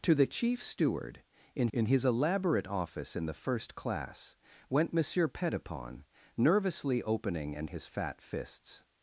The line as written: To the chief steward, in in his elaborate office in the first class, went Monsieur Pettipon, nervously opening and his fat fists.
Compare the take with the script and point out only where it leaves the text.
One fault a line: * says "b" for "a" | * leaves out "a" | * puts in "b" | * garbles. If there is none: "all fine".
all fine